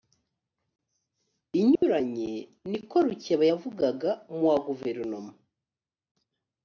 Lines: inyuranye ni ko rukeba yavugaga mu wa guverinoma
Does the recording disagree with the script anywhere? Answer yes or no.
no